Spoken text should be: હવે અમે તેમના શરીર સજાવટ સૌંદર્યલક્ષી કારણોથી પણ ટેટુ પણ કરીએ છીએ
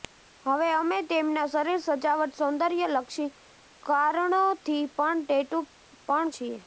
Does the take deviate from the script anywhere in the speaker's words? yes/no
yes